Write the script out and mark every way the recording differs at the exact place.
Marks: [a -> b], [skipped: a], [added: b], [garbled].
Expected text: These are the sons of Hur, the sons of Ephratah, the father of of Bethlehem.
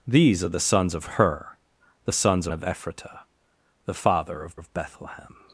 These are the sons of Hur, the sons of Ephratah, the father of of Bethlehem.